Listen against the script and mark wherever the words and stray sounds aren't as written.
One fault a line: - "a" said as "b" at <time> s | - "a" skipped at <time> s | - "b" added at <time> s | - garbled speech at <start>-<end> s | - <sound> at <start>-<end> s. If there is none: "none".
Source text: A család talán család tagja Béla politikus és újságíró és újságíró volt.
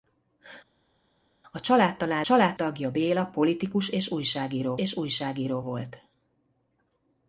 none